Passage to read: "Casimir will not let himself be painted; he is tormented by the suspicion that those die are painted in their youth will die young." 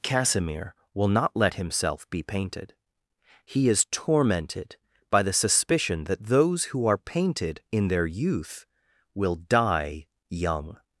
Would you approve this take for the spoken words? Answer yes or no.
no